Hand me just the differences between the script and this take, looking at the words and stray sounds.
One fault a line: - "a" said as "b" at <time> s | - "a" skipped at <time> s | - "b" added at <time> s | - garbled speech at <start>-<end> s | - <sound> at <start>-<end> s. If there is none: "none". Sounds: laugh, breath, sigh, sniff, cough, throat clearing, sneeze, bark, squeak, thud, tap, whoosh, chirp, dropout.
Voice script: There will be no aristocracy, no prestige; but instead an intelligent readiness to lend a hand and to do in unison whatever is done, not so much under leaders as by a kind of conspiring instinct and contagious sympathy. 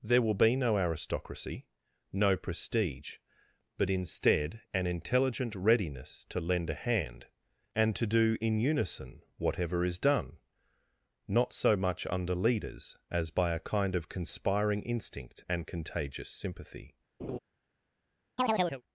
- laugh at 17.2-17.4 s
- chirp at 18.4-18.8 s